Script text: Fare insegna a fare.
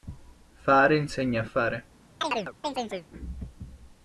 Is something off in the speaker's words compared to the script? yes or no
no